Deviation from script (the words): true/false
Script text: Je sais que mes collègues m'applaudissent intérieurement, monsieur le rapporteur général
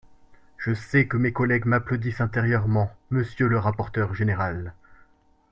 false